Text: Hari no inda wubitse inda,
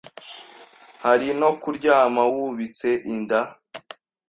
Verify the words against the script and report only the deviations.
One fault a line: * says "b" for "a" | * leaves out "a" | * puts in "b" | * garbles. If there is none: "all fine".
* says "kuryama" for "inda"